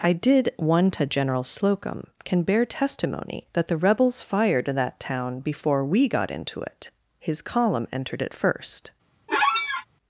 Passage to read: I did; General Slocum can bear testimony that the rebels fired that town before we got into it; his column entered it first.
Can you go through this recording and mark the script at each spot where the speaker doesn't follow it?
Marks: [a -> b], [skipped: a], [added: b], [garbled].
I did; [added: one to] General Slocum can bear testimony that the rebels fired that town before we got into it; his column entered it first.